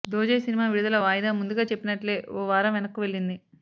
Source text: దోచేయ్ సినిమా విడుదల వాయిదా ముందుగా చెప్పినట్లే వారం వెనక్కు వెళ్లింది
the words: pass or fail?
fail